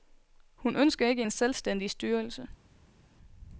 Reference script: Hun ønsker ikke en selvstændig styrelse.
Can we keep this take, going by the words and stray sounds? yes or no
yes